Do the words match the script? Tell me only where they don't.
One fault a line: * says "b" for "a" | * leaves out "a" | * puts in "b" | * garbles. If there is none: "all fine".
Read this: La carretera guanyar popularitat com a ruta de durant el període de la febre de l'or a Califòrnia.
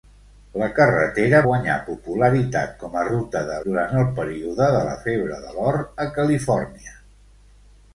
all fine